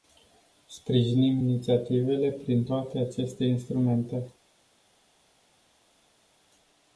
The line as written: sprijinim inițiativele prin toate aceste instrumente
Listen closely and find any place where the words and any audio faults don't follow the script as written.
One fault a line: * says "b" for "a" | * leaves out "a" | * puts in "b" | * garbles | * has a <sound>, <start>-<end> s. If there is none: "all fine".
all fine